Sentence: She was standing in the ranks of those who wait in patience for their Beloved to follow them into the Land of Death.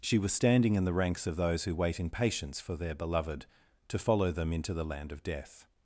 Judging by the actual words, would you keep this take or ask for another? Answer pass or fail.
pass